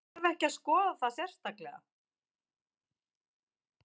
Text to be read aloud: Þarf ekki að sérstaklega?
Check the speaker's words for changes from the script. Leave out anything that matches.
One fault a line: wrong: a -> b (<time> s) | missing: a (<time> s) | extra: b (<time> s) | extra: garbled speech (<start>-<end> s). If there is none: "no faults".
extra: skoða það (0.5 s)